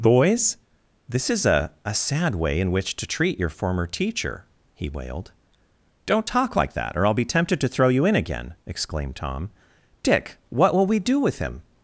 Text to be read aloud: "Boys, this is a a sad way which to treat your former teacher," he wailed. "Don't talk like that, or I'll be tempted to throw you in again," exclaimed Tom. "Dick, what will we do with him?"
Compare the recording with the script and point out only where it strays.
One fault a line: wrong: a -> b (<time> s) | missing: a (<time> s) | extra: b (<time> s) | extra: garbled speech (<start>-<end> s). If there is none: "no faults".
extra: in (2.6 s)